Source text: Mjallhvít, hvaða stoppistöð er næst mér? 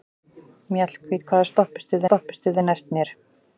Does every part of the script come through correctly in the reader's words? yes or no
no